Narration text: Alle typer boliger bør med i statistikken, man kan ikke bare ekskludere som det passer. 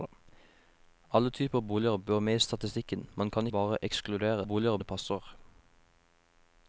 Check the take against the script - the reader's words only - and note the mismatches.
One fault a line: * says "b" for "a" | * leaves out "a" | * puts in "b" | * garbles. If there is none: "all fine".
* leaves out "ikke"
* says "boliger" for "som"